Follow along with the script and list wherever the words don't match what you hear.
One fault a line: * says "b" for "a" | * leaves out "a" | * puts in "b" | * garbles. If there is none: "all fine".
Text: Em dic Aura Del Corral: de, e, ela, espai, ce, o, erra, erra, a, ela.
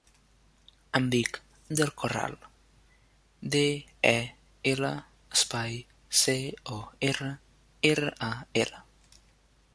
* leaves out "Aura"